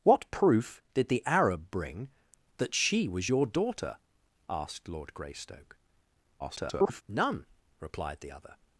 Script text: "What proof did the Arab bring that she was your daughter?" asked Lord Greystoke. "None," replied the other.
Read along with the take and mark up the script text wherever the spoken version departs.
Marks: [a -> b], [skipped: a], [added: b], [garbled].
"What proof did the Arab bring that she was your daughter?" asked Lord Greystoke. [garbled] "None," replied the other.